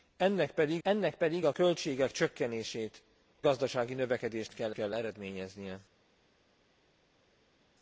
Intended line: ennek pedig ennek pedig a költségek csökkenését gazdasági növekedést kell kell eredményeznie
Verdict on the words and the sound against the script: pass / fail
pass